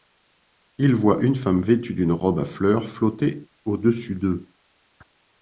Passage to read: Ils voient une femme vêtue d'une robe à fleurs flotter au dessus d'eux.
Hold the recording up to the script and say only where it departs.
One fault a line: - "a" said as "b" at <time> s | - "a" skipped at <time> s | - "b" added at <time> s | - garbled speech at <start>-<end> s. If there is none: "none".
none